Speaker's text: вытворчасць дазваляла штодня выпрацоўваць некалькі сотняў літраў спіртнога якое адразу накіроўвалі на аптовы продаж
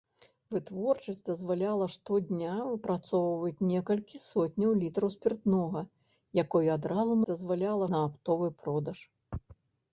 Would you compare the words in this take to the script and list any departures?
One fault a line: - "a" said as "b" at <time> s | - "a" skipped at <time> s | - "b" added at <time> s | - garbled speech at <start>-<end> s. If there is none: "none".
- "накіроўвалі" said as "дазваляла" at 7.3 s